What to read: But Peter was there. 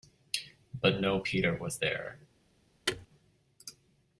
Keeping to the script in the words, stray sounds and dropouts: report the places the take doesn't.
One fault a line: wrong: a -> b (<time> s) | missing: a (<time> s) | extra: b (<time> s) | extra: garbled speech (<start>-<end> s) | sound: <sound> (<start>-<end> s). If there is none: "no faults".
extra: no (1.0 s)
sound: thud (2.9-3.1 s)